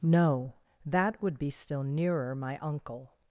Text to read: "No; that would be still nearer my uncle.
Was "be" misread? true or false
false